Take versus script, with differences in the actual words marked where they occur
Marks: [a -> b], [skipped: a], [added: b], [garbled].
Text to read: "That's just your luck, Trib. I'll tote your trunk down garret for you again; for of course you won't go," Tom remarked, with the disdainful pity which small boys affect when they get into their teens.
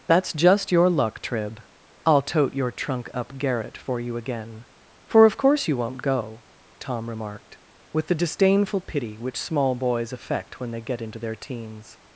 "That's just your luck, Trib. I'll tote your trunk [down -> up] garret for you again; for of course you won't go," Tom remarked, with the disdainful pity which small boys affect when they get into their teens.